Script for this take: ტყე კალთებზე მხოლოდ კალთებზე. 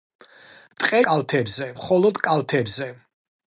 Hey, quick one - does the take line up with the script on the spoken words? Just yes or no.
yes